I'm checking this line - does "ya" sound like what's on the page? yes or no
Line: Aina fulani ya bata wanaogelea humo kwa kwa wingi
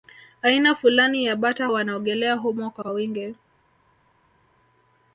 yes